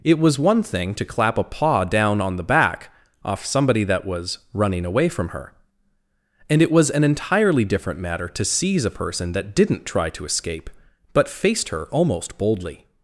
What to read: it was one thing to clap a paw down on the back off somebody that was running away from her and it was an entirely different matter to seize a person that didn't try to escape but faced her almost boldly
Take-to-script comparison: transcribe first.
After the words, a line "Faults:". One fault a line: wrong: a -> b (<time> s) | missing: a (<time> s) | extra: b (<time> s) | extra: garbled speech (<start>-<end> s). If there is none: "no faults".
it was one thing to clap a paw down on the back off somebody that was running away from her and it was an entirely different matter to seize a person that didn't try to escape but faced her almost boldly
Faults:
no faults